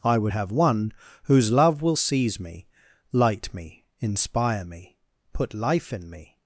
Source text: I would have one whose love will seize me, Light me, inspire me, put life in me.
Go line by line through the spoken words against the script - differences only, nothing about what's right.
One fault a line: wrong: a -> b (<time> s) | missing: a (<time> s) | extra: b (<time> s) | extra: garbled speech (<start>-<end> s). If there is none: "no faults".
no faults